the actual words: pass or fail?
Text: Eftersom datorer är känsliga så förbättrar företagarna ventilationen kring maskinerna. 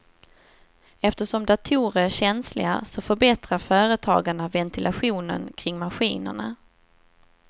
pass